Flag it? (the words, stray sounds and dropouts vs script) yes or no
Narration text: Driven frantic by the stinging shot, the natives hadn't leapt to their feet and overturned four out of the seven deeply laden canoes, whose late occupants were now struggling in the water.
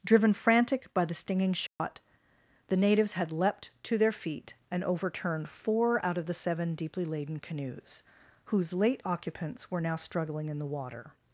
yes